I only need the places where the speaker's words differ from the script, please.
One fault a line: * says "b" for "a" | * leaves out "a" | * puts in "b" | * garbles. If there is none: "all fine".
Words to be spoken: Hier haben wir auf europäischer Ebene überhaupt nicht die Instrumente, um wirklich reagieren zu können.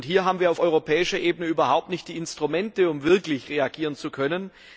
all fine